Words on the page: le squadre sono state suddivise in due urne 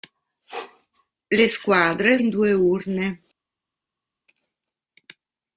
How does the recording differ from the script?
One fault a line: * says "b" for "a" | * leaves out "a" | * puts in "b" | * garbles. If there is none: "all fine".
* leaves out "sono state suddivise"